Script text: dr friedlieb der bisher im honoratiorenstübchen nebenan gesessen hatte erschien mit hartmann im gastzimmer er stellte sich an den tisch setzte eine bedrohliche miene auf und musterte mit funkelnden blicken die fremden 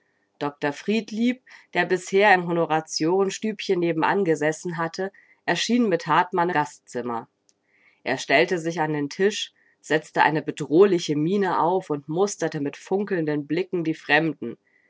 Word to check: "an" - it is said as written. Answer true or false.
true